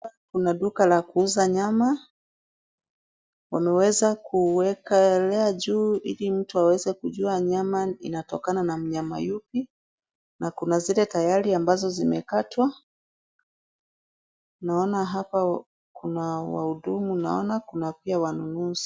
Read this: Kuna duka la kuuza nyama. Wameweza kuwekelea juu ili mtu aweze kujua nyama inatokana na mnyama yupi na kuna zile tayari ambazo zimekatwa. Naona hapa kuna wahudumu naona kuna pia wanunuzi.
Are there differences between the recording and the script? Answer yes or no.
no